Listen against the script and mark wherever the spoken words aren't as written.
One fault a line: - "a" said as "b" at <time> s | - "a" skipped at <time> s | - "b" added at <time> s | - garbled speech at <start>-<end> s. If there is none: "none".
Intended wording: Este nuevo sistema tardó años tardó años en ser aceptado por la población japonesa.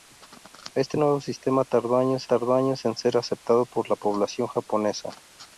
none